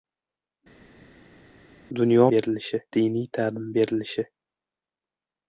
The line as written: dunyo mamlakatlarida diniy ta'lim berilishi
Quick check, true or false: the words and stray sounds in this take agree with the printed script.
false